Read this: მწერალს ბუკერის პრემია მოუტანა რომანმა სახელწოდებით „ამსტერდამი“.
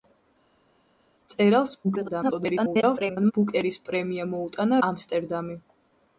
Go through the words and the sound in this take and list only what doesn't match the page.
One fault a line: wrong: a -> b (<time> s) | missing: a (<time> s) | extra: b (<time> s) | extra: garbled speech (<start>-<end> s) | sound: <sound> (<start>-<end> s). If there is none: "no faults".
extra: garbled speech (1.8-3.3 s)
missing: რომანმა სახელწოდებით (4.8 s)